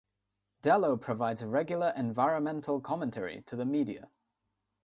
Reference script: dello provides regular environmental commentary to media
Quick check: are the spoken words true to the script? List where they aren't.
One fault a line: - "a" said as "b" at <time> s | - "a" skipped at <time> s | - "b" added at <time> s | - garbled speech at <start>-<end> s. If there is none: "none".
- "the" added at 3.5 s